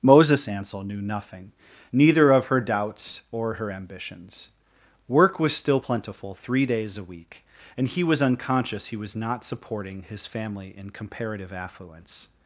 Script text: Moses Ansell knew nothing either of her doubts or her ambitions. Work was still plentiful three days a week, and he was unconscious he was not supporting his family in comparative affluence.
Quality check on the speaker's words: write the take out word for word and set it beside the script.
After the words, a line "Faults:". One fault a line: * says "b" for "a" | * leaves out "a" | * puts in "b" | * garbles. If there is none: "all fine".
Moses Ansell knew nothing neither of her doubts or her ambitions. Work was still plentiful three days a week, and he was unconscious he was not supporting his family in comparative affluence.
Faults:
* says "neither" for "either"